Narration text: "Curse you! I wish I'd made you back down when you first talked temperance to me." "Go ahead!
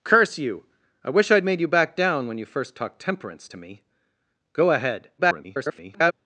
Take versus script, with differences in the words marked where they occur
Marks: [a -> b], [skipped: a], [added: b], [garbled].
"Curse you! I wish I'd made you back down when you first talked temperance to me." "Go ahead! [garbled]